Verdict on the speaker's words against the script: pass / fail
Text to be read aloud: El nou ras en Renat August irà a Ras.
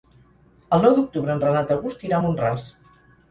fail